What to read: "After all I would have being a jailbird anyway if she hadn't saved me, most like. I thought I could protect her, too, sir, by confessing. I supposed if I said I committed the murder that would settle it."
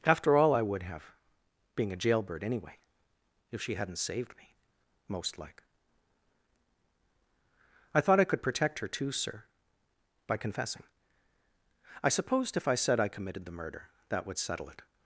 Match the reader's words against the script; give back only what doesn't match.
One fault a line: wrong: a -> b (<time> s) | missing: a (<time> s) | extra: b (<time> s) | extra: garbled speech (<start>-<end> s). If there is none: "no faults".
no faults